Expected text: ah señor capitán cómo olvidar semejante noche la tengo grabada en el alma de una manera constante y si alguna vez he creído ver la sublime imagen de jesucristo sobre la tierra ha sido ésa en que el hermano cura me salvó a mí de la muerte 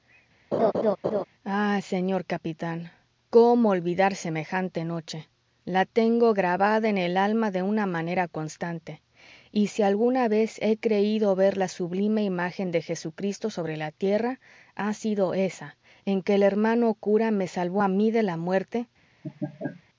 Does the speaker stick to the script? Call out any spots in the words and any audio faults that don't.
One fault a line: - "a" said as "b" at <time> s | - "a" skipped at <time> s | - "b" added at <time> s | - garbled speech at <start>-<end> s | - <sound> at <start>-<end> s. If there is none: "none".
- laugh at 0.5-1.2 s
- laugh at 19.2-19.8 s